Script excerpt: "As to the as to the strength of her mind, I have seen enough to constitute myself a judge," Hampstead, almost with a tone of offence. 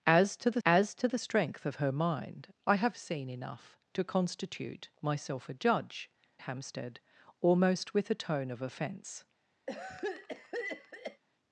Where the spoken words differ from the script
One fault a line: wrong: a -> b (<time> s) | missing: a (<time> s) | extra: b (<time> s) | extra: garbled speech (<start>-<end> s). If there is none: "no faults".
no faults